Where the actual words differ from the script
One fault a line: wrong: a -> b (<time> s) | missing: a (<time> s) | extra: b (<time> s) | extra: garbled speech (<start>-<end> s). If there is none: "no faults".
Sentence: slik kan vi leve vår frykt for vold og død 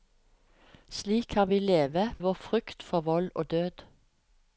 no faults